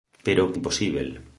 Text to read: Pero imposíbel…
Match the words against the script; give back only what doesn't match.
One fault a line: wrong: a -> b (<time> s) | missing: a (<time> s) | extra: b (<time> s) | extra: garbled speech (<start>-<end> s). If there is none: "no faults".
no faults